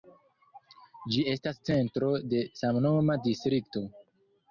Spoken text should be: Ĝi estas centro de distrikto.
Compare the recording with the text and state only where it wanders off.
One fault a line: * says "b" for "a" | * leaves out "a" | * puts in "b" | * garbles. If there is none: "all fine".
* puts in "samnoma"